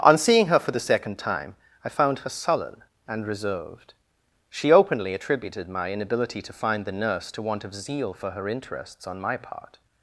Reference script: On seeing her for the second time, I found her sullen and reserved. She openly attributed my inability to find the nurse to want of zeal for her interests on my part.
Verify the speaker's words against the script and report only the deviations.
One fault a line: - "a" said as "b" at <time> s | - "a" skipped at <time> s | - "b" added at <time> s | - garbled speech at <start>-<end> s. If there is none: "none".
none